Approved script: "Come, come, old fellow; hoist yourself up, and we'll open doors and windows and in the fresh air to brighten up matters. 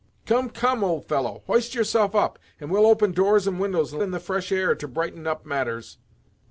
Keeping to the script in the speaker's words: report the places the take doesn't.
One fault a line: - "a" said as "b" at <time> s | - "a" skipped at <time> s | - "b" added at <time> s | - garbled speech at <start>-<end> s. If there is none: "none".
none